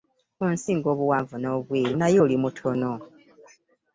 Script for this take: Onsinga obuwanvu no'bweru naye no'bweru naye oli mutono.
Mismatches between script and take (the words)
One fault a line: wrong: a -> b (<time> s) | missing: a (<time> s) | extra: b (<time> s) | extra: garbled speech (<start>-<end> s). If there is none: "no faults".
missing: no'bweru naye (2.2 s)